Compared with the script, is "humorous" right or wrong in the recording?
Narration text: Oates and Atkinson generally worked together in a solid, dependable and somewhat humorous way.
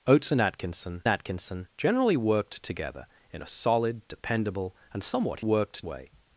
wrong